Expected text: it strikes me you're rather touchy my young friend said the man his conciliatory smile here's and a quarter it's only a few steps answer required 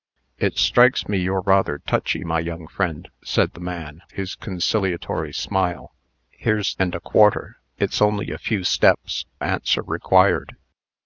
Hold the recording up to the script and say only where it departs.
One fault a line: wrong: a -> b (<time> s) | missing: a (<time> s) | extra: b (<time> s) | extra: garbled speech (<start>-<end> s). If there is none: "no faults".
no faults